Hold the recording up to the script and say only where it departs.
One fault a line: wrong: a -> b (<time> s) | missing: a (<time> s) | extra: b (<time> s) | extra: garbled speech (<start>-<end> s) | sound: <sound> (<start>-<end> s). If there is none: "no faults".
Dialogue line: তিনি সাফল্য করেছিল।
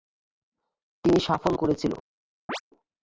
sound: chirp (2.5-2.6 s)